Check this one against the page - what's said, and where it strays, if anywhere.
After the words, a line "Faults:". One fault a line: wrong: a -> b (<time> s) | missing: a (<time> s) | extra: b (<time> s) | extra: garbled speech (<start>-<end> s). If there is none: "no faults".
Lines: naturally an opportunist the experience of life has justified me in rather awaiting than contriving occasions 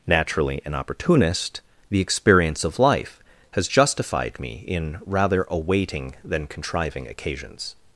naturally an opportunist the experience of life has justified me in rather awaiting than contriving occasions
Faults:
no faults